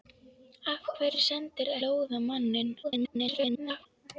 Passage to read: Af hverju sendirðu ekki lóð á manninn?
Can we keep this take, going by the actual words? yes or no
no